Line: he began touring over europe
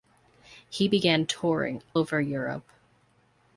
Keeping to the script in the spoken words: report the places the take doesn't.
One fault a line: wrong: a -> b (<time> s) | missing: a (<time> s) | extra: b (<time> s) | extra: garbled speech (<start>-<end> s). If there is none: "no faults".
no faults